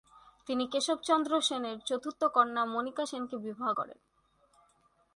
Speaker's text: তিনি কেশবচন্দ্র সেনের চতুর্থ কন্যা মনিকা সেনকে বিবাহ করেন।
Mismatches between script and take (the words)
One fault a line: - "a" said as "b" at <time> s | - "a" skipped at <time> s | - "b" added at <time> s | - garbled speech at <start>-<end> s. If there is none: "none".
none